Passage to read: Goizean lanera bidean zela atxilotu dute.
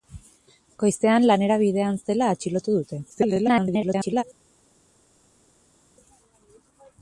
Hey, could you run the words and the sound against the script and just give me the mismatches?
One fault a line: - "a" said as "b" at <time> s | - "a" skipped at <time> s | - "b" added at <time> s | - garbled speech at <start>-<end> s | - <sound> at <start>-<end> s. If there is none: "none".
- garbled speech at 3.1-4.2 s